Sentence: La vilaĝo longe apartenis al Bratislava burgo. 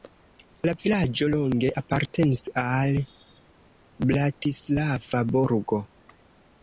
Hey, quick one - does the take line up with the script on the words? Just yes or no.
yes